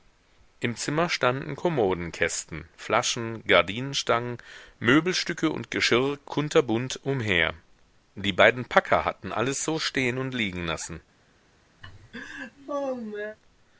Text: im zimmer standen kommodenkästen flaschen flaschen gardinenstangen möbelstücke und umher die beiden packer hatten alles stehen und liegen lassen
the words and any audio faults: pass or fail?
fail